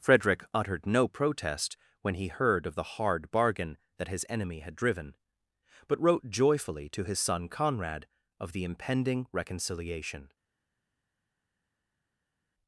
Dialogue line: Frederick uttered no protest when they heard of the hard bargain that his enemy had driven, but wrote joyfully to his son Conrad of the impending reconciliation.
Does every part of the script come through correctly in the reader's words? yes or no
no